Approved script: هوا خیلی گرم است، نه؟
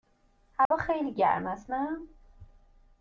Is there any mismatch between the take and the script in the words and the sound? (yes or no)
yes